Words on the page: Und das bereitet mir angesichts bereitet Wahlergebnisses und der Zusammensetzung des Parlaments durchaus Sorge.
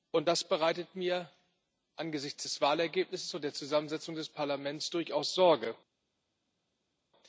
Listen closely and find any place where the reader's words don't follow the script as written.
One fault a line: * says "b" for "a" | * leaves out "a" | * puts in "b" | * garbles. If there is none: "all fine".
* says "des" for "bereitet"